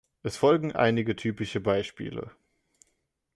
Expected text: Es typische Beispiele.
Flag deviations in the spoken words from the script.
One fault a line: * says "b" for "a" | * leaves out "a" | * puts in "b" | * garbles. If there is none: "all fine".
* puts in "folgen einige"